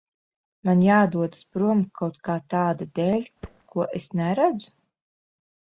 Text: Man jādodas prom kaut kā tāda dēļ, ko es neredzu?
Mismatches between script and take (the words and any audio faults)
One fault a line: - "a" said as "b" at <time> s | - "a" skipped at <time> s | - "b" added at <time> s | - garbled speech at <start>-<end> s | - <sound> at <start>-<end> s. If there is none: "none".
- thud at 3.4-3.6 s